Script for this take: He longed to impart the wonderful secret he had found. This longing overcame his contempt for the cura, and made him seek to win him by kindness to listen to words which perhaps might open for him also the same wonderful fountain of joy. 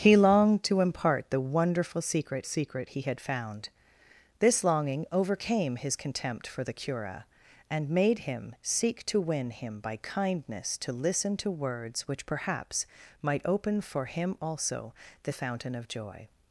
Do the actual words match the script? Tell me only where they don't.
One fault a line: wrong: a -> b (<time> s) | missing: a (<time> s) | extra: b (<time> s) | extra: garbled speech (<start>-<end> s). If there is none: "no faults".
extra: secret (2.4 s)
missing: same wonderful (15.3 s)